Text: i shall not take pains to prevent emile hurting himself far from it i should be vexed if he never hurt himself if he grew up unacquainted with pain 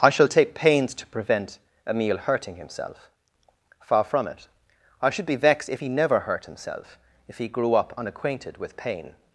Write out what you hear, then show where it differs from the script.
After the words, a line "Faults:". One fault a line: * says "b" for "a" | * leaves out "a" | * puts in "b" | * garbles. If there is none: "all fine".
i shall take pains to prevent emile hurting himself far from it i should be vexed if he never hurt himself if he grew up unacquainted with pain
Faults:
* leaves out "not"